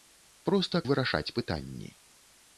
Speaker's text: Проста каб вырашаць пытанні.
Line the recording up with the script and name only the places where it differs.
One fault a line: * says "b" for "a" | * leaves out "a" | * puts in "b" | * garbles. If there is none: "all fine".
* leaves out "каб"